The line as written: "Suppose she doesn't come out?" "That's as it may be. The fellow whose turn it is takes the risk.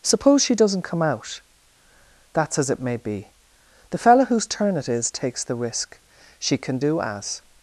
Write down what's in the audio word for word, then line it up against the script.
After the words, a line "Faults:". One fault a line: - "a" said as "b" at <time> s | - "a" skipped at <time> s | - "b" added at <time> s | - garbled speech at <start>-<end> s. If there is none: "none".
"Suppose she doesn't come out?" "That's as it may be. The fellow whose turn it is takes the risk. She can do as
Faults:
- "She can do as" added at 6.4 s